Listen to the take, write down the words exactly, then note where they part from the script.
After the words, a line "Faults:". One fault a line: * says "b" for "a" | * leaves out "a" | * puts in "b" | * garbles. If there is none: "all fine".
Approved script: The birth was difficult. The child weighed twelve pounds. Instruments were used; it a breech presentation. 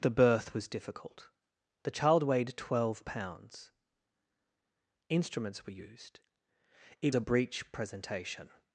The birth was difficult. The child weighed twelve pounds. Instruments were used; it a breech presentation.
Faults:
all fine